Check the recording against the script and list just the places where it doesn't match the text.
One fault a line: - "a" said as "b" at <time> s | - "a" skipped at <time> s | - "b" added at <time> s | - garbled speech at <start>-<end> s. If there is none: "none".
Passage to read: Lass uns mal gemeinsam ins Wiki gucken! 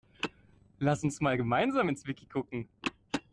none